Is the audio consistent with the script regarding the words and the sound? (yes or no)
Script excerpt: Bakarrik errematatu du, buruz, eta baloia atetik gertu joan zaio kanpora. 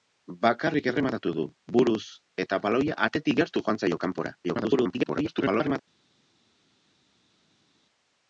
no